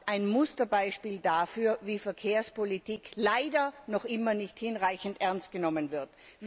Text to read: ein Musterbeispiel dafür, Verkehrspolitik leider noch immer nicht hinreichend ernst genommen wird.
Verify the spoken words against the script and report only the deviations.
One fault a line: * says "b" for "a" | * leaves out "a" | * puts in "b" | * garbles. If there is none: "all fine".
* puts in "wie"